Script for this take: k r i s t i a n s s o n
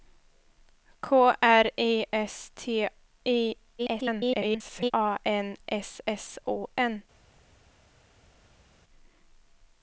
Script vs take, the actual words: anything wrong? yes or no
yes